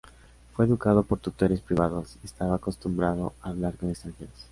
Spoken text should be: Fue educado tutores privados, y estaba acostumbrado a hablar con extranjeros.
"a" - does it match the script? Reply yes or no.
yes